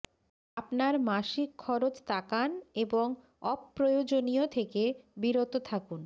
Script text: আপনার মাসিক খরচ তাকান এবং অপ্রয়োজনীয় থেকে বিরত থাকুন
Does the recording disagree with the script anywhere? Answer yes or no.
no